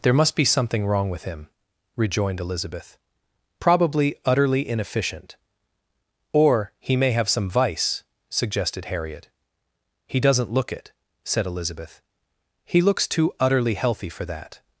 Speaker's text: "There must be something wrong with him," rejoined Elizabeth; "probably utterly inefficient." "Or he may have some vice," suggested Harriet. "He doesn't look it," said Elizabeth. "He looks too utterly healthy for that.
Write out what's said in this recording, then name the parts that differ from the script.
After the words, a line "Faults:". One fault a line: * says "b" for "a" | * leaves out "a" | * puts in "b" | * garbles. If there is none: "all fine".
"There must be something wrong with him," rejoined Elizabeth; "probably utterly inefficient." "Or he may have some vice," suggested Harriet. "He doesn't look it," said Elizabeth. "He looks too utterly healthy for that.
Faults:
all fine